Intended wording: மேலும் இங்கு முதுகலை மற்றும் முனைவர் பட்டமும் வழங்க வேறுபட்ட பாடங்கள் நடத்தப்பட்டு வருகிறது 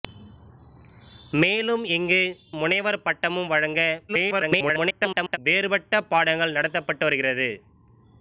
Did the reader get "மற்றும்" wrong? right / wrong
wrong